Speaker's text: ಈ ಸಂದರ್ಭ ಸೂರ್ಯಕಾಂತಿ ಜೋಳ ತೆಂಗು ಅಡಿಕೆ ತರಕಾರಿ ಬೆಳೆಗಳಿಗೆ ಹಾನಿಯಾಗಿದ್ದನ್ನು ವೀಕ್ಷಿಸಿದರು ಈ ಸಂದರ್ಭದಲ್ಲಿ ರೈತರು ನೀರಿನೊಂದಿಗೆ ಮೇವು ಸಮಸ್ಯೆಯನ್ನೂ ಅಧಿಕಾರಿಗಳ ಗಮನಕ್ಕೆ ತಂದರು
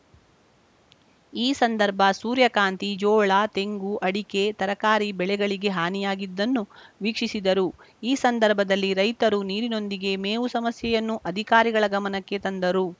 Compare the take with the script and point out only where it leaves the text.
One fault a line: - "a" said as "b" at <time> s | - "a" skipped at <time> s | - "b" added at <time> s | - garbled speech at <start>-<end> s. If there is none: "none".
none